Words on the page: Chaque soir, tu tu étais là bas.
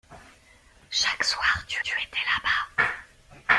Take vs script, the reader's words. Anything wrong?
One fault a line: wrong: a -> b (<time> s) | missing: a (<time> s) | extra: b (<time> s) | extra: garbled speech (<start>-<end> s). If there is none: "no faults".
no faults